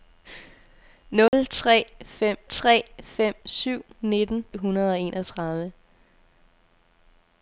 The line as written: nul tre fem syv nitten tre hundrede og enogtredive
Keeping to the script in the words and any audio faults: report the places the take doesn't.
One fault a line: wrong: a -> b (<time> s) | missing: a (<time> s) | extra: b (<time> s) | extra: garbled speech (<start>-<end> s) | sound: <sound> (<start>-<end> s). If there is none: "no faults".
sound: dropout (1.3-1.3 s)
extra: tre fem (2.4 s)
missing: tre (4.4 s)